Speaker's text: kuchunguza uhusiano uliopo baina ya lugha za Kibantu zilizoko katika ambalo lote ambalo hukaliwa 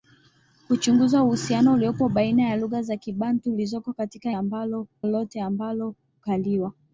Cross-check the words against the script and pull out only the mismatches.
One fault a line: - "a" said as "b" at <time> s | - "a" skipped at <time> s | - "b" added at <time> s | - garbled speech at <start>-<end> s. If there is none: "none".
none